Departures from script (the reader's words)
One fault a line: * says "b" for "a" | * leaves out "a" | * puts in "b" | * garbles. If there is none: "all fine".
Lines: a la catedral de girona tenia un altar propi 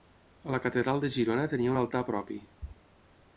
all fine